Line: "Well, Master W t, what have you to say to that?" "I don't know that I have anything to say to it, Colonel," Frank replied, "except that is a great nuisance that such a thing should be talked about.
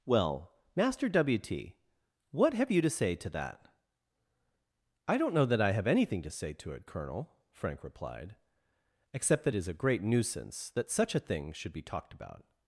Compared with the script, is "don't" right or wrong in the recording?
right